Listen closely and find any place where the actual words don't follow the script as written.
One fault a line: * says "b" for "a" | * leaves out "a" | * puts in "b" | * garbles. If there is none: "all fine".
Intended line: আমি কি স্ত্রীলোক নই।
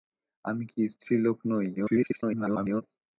* garbles